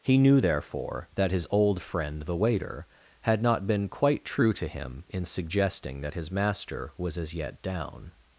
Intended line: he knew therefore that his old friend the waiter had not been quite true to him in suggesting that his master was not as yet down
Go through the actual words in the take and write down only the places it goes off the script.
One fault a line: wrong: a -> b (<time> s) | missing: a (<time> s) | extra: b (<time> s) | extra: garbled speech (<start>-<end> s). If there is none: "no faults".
missing: not (7.2 s)